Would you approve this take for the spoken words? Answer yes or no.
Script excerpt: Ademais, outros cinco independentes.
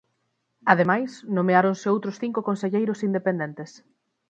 no